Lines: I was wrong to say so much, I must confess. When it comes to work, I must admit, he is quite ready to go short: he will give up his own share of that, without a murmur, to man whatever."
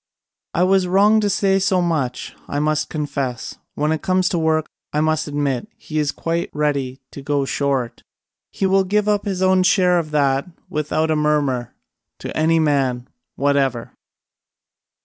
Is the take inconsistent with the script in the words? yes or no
yes